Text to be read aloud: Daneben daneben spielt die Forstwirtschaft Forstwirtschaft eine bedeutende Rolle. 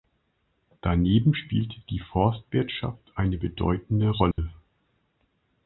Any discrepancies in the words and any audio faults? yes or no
yes